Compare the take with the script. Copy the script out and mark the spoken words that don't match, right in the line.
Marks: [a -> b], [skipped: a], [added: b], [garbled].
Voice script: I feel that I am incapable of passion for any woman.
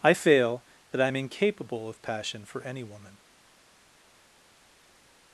I [feel -> fail] that I am incapable of passion for any woman.